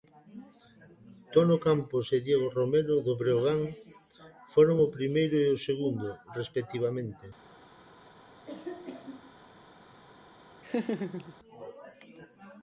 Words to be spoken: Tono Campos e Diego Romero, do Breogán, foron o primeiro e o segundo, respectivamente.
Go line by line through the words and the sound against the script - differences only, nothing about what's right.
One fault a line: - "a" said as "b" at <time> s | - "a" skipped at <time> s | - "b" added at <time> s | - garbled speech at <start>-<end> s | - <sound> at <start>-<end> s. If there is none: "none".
- cough at 8.5-9.3 s
- laugh at 10.6-11.3 s